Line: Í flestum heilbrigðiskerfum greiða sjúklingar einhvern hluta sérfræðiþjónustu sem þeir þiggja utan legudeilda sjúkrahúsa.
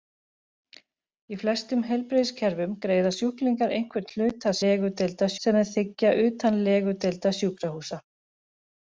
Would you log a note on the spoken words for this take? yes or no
yes